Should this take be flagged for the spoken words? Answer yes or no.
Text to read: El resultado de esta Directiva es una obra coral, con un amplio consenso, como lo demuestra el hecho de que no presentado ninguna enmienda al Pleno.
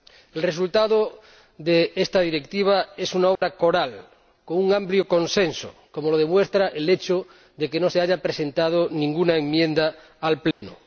yes